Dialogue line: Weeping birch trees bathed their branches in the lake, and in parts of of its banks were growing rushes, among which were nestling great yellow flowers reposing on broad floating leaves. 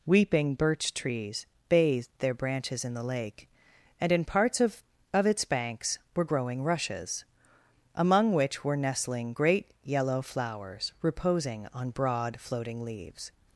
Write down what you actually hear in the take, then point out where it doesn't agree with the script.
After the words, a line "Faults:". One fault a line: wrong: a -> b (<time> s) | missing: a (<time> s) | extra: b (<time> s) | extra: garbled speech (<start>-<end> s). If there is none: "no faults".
Weeping birch trees bathed their branches in the lake, and in parts of of its banks were growing rushes, among which were nestling great yellow flowers reposing on broad floating leaves.
Faults:
no faults